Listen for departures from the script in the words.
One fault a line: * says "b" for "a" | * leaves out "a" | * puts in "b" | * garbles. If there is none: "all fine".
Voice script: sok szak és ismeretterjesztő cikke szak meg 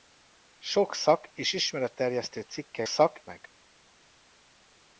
all fine